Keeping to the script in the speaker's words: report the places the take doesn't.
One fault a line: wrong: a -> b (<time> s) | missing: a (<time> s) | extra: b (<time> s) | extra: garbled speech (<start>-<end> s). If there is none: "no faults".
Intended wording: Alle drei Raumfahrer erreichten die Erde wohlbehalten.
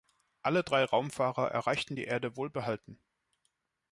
no faults